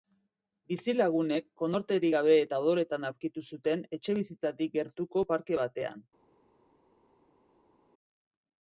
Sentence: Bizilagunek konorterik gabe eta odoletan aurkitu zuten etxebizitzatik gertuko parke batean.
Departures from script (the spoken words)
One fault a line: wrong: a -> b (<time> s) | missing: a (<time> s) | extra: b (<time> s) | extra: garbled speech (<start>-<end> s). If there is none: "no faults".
no faults